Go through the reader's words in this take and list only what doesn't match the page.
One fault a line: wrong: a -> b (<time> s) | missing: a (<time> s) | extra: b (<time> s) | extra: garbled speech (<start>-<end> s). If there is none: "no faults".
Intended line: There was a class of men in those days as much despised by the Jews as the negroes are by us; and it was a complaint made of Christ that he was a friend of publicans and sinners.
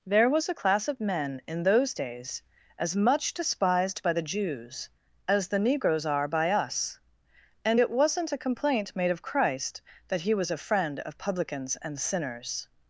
wrong: was -> wasn't (7.9 s)